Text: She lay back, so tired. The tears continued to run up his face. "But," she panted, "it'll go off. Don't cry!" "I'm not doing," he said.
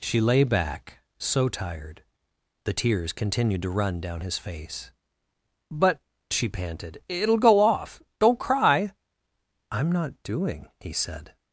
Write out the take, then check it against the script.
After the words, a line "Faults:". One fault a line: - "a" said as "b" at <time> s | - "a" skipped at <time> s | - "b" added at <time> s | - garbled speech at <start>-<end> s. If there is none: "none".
She lay back, so tired. The tears continued to run down his face. "But," she panted, "it'll go off. Don't cry!" "I'm not doing," he said.
Faults:
- "up" said as "down" at 4.0 s